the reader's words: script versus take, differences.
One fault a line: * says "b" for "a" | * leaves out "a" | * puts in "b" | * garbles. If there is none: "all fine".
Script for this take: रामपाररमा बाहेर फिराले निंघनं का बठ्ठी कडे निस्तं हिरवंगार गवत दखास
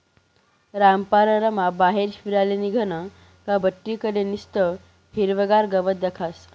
all fine